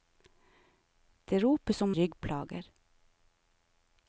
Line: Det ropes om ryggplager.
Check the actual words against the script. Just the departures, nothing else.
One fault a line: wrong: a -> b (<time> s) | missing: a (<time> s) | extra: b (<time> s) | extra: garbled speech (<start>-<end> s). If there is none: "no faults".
no faults